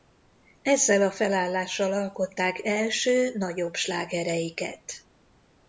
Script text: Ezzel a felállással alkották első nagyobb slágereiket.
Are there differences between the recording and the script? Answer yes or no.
no